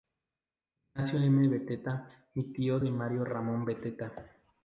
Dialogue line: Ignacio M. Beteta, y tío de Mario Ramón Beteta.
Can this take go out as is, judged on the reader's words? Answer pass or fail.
pass